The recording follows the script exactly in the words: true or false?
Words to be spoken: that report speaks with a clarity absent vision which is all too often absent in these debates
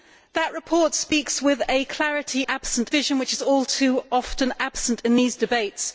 true